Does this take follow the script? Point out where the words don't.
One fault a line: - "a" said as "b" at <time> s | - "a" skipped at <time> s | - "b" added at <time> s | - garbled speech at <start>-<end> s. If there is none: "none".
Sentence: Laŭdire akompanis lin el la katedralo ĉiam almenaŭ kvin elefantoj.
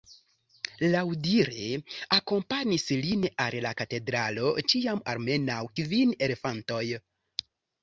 - "el" said as "al" at 3.5 s